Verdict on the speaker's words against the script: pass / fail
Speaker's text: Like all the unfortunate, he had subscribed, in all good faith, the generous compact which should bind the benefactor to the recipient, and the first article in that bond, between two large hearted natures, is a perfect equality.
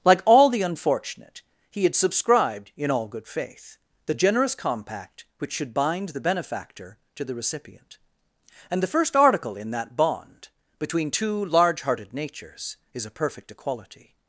pass